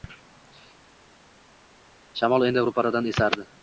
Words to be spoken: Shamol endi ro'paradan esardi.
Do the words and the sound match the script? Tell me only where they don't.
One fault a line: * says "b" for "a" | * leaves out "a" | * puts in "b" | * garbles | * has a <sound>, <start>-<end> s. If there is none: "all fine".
all fine